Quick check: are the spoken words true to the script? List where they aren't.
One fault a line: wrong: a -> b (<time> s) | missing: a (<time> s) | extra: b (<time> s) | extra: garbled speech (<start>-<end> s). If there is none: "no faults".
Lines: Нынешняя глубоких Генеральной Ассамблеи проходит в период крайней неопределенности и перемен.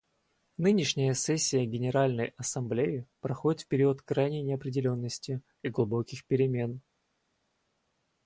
wrong: глубоких -> сессия (1.1 s)
extra: глубоких (5.7 s)